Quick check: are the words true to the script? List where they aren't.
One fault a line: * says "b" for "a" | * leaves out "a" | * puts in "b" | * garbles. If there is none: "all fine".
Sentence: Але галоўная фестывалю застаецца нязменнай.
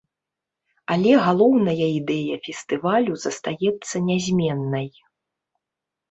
* puts in "ідэя"